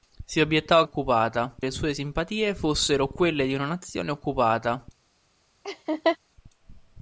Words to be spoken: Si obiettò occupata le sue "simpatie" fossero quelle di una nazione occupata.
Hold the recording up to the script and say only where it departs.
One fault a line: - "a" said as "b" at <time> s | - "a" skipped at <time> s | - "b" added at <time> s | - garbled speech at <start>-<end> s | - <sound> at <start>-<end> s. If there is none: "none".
- laugh at 5.6-6.2 s